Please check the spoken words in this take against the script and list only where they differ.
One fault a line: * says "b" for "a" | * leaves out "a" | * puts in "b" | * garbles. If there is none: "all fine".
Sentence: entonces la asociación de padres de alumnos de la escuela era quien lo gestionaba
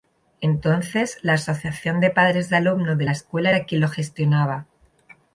all fine